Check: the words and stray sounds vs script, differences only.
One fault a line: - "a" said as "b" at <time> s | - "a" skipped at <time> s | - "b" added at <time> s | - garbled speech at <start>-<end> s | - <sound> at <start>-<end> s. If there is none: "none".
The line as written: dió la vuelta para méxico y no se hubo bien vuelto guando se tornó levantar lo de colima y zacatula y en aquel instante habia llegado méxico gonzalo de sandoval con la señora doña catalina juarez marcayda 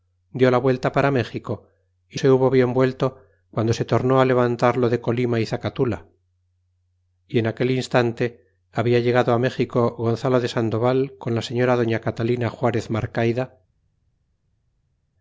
- "no" skipped at 2.2 s